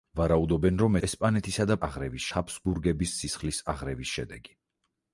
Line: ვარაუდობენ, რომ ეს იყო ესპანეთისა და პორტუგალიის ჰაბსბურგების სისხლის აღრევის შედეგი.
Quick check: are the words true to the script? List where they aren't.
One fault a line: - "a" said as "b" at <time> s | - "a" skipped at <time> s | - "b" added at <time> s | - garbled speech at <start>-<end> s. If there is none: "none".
- "ეს იყო" skipped at 1.0 s
- "პორტუგალიის" said as "აღრევის" at 1.9 s